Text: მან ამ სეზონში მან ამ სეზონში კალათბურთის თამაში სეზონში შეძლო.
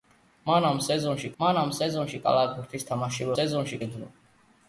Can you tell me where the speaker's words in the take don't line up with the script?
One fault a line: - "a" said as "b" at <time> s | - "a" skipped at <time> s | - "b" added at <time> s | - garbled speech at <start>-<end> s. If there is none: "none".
none